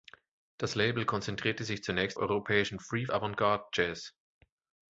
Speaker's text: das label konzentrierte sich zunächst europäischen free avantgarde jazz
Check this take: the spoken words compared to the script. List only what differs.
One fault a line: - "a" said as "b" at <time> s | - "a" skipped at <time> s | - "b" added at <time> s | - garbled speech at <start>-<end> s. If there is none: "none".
none